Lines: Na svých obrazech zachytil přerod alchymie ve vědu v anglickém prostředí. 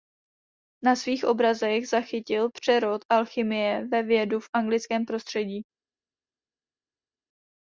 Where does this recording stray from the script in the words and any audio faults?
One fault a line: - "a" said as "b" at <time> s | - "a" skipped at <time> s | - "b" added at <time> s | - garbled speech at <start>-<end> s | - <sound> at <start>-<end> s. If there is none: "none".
none